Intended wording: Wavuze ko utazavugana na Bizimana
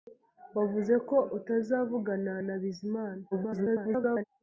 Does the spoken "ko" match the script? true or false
true